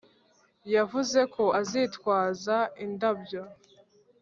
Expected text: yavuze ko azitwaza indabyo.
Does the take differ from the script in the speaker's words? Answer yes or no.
no